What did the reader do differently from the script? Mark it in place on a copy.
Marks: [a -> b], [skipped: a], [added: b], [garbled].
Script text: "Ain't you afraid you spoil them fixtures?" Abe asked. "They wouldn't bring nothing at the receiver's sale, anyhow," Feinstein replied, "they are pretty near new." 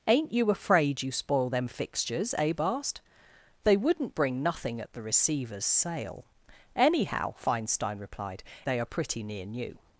"Ain't you afraid you spoil them fixtures?" Abe asked. "They wouldn't bring nothing at the receiver's sale, anyhow," Feinstein replied, "they are pretty near new."